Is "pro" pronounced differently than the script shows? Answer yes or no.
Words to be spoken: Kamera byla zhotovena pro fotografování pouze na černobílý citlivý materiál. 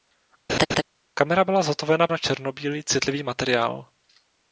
yes